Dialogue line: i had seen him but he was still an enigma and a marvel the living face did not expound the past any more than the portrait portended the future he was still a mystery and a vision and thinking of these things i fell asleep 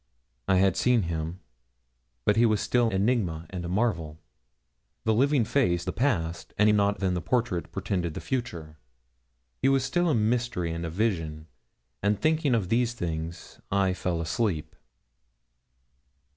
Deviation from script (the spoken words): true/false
true